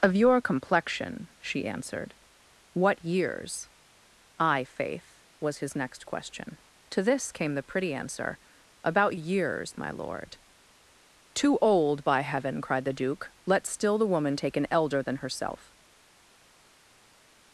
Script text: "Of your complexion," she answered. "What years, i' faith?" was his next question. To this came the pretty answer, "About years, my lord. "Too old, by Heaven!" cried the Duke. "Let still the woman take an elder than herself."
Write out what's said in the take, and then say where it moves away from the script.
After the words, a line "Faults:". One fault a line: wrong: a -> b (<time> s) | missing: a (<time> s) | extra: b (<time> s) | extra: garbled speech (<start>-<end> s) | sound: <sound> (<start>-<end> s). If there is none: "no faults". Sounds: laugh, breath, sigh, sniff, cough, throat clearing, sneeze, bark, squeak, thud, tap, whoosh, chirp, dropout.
"Of your complexion," she answered. "What years, i' faith?" was his next question. To this came the pretty answer, "About years, my lord. "Too old, by Heaven!" cried the Duke. "Let still the woman take an elder than herself."
Faults:
no faults